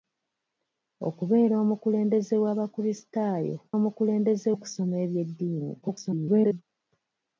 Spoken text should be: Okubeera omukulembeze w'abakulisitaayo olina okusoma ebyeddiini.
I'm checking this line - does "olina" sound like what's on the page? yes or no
no